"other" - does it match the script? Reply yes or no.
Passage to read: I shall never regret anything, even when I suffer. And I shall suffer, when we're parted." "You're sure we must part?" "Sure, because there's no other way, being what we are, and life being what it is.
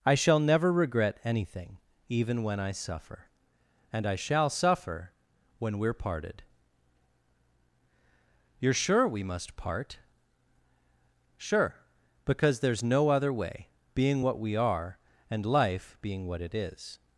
yes